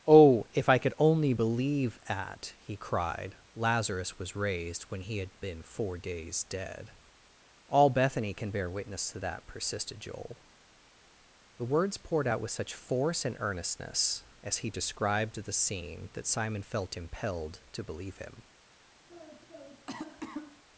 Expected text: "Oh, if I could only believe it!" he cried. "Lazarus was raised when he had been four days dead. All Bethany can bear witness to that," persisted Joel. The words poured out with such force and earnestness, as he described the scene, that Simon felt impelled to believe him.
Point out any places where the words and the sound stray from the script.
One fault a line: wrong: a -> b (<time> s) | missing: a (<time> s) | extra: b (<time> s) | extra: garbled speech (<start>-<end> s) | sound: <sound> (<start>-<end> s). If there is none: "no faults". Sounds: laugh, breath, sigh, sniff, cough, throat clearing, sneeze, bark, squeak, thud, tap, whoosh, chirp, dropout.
wrong: it -> at (2.1 s)
sound: cough (19.1-20.6 s)